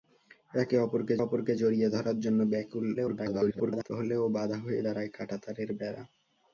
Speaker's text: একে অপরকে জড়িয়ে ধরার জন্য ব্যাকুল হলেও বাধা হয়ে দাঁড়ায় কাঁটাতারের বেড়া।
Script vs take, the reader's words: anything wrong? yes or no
yes